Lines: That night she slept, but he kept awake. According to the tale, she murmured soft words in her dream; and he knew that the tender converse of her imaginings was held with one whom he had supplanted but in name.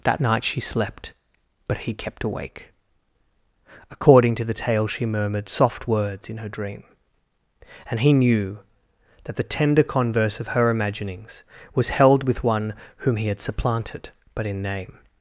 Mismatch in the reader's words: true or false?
false